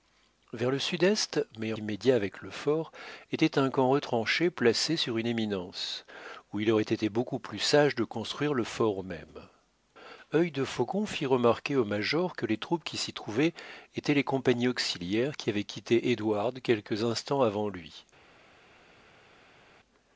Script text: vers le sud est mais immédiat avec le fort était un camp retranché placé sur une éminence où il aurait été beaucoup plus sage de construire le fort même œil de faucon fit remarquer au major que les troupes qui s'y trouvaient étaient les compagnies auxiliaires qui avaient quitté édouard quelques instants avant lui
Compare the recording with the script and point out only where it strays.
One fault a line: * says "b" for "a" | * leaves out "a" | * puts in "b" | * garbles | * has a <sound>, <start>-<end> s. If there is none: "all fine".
all fine